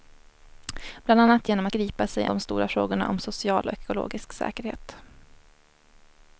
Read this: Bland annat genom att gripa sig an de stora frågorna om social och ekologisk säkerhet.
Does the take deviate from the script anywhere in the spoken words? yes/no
yes